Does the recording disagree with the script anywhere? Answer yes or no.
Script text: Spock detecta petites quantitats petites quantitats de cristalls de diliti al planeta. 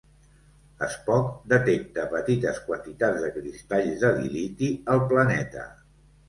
yes